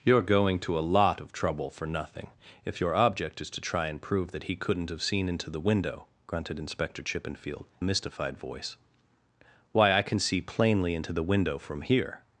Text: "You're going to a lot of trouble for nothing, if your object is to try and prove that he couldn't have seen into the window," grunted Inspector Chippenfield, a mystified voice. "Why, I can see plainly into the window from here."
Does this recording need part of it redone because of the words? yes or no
no